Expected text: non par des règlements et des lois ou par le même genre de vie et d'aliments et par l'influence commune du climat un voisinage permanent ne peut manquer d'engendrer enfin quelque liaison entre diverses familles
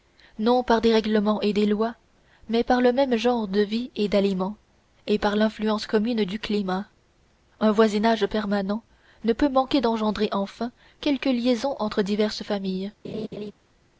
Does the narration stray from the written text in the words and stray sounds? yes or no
yes